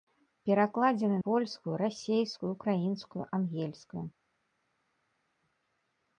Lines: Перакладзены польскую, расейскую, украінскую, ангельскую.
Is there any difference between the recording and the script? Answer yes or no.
no